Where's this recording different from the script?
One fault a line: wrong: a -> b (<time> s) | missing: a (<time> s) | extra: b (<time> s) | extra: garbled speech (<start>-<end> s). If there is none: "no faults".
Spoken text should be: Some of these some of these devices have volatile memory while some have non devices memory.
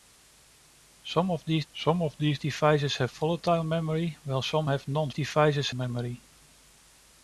no faults